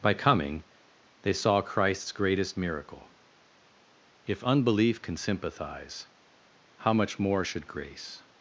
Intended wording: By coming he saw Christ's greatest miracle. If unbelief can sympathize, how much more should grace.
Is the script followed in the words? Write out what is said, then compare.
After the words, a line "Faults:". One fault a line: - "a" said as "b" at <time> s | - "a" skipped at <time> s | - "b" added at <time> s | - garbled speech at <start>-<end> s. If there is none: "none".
By coming they saw Christ's greatest miracle. If unbelief can sympathize, how much more should grace.
Faults:
- "he" said as "they" at 1.2 s